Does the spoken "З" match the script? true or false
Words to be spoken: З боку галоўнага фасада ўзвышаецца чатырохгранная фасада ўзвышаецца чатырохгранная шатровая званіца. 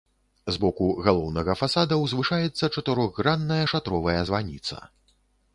true